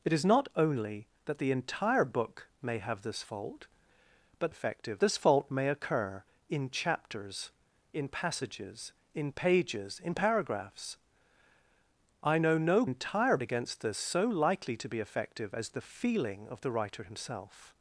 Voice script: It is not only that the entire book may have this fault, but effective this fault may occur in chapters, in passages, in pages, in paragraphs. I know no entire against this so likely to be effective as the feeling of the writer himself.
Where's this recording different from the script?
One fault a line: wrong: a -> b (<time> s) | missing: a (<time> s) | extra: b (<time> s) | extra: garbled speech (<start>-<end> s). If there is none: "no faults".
no faults